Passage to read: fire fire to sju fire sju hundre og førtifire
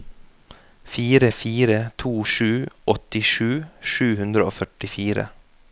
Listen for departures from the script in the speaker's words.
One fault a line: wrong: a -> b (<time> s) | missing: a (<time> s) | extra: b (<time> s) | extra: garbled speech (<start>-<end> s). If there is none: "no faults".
wrong: fire -> åttisju (2.9 s)